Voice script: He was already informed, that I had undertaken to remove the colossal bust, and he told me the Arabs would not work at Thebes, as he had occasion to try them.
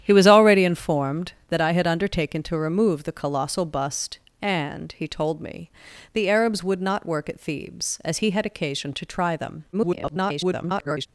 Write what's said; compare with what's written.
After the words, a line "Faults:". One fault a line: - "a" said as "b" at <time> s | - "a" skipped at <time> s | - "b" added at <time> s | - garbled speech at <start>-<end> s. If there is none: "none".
He was already informed, that I had undertaken to remove the colossal bust, and he told me the Arabs would not work at Thebes, as he had occasion to try them. [garbled]
Faults:
- garbled speech at 9.7-11.1 s